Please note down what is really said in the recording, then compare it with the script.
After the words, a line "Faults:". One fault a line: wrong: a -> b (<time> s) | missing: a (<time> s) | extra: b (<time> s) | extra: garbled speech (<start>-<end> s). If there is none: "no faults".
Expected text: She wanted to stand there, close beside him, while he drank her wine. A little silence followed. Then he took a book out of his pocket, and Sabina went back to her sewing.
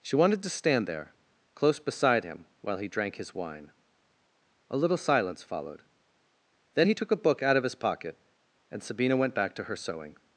She wanted to stand there, close beside him, while he drank his wine. A little silence followed. Then he took a book out of his pocket, and Sabina went back to her sewing.
Faults:
wrong: her -> his (3.2 s)